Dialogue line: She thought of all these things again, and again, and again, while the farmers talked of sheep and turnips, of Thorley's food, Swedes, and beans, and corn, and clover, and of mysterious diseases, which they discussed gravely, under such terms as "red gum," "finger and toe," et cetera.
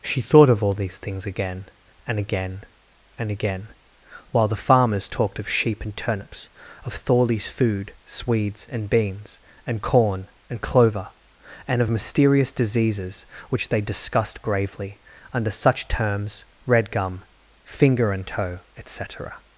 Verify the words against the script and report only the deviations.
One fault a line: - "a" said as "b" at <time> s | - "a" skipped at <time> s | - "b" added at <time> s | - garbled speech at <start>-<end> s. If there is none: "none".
- "as" skipped at 16.4 s